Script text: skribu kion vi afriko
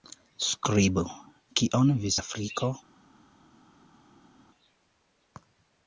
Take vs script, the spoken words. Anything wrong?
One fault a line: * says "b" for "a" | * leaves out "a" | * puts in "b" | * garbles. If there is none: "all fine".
all fine